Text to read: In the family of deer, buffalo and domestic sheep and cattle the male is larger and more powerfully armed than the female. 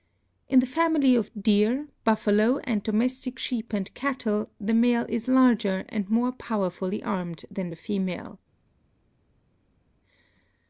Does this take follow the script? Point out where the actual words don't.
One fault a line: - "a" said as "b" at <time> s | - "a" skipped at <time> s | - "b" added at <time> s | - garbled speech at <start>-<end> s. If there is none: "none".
none